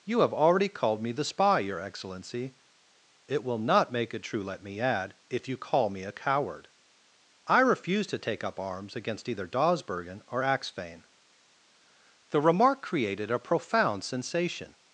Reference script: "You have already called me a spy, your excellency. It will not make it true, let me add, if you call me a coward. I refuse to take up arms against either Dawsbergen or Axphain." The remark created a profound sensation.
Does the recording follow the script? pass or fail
fail